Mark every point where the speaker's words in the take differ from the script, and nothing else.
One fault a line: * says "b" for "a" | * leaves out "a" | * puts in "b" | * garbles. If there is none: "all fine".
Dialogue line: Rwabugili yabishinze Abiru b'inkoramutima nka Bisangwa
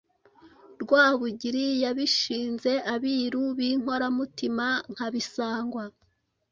all fine